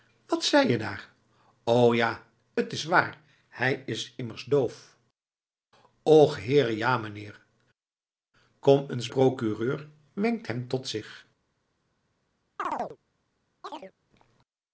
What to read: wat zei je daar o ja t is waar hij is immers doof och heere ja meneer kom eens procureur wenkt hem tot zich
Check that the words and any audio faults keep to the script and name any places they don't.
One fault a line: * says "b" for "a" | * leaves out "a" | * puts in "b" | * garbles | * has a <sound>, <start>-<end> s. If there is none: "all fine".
* has a chirp, 12.6-13.0 s
* has a chirp, 13.6-13.9 s